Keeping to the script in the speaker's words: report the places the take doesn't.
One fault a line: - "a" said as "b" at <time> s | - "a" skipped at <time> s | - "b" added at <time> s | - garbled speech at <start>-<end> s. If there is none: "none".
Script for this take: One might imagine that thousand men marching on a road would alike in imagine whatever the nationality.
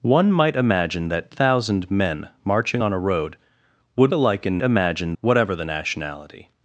none